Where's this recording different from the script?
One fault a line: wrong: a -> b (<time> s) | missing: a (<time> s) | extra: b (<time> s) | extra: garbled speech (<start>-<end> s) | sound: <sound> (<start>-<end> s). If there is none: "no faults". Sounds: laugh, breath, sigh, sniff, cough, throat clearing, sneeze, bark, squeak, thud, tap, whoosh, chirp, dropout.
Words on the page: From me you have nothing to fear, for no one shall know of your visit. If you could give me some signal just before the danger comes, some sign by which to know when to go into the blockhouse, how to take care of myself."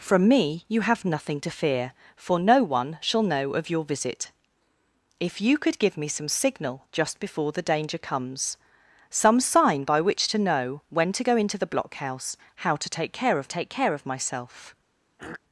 extra: take care of (13.5 s)
sound: throat clearing (15.2-15.4 s)